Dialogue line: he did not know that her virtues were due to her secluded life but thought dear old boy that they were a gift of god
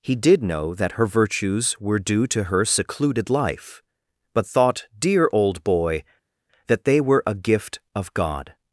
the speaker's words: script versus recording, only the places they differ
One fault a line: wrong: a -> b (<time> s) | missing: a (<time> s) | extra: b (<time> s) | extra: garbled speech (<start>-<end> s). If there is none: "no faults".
missing: not (0.4 s)